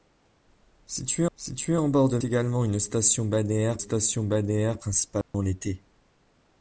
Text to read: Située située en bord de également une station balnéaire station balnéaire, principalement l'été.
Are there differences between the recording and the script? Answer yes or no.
no